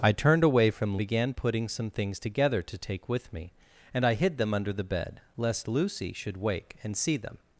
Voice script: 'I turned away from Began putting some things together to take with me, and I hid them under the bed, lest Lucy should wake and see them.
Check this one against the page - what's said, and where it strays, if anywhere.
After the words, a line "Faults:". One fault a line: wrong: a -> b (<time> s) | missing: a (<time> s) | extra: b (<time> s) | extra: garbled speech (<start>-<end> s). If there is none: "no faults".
'I turned away from Began putting some things together to take with me, and I hid them under the bed, lest Lucy should wake and see them.
Faults:
no faults